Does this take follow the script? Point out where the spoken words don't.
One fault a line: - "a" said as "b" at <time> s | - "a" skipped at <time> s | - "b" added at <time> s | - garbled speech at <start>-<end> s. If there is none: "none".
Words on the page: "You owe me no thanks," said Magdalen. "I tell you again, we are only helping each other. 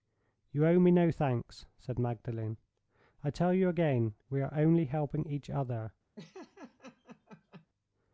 none